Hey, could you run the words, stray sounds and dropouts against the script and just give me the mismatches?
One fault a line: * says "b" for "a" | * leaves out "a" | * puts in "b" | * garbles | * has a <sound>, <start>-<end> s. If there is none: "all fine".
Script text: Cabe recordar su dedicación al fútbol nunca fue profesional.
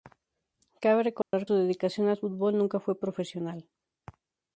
* has a dropout, 1.2-1.3 s